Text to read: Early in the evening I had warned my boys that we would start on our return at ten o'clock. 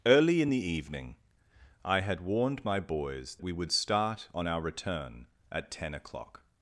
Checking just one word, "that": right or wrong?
wrong